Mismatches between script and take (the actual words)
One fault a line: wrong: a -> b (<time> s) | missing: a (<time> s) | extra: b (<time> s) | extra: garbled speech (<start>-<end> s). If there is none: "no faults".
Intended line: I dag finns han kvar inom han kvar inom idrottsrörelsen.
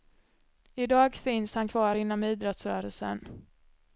missing: han kvar inom (2.2 s)